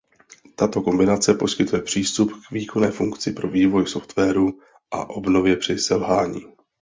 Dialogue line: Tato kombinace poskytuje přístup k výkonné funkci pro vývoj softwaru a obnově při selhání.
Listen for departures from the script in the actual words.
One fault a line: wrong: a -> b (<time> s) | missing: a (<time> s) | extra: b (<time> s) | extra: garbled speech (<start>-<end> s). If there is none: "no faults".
no faults